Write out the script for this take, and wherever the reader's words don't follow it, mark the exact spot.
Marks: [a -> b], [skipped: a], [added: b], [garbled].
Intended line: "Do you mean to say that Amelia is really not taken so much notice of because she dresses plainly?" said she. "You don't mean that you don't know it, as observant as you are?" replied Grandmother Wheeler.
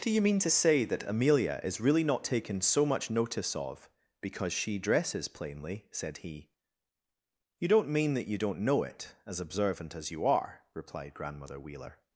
"Do you mean to say that Amelia is really not taken so much notice of because she dresses plainly?" said [she. -> he] "You don't mean that you don't know it, as observant as you are?" replied Grandmother Wheeler.